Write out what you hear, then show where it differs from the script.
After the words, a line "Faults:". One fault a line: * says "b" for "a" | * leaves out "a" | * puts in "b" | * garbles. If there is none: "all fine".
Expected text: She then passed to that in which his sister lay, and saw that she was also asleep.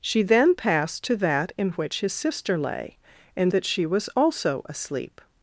She then passed to that in which his sister lay, and that she was also asleep.
Faults:
* leaves out "saw"